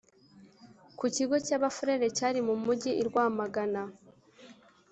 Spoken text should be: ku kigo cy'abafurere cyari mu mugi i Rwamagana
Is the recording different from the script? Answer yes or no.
no